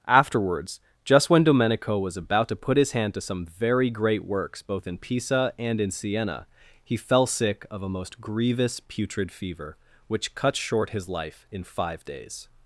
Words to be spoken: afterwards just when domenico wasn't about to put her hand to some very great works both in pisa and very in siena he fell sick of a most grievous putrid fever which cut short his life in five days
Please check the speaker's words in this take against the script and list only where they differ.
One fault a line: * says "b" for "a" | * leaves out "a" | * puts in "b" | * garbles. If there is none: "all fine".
* says "was" for "wasn't"
* says "his" for "her"
* leaves out "very"